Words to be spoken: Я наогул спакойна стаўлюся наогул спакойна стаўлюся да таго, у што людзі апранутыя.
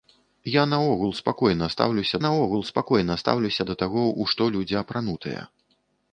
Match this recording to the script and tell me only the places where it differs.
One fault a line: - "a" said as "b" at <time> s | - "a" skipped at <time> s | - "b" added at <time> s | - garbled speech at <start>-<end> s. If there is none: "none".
none